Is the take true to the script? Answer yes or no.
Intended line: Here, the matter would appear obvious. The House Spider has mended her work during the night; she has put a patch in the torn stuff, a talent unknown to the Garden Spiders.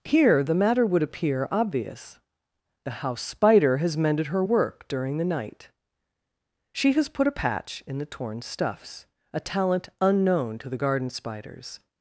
no